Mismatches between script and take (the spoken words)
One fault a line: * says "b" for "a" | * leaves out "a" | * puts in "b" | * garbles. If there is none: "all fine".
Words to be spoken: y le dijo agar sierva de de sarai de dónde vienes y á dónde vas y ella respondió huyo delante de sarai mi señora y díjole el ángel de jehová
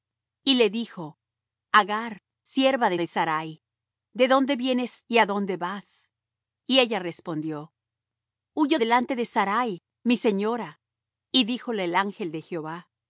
all fine